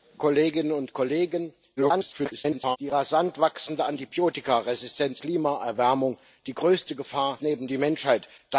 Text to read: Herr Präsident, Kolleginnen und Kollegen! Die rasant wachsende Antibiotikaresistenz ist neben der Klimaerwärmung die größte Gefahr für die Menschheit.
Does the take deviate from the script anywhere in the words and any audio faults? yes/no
yes